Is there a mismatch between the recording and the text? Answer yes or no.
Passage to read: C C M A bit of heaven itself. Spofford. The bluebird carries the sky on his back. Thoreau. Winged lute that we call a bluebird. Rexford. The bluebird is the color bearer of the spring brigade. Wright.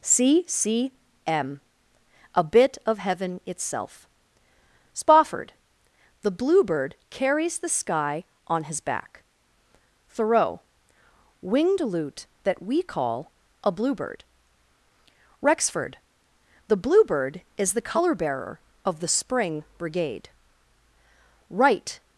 no